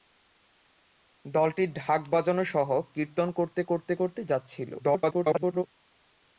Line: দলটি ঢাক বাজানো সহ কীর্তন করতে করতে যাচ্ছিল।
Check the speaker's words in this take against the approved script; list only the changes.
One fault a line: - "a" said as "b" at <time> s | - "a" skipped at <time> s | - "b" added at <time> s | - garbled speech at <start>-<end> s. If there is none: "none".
- "করতে" added at 3.9 s
- garbled speech at 4.8-5.6 s